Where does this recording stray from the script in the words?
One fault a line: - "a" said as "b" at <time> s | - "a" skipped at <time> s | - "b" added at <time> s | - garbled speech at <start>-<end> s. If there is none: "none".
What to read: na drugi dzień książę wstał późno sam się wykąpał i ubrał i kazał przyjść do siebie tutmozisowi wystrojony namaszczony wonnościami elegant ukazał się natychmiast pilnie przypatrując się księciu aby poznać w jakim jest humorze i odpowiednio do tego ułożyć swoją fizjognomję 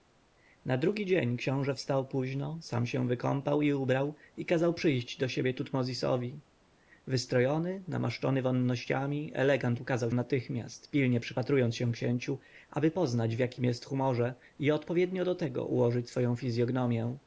- "się" skipped at 10.1 s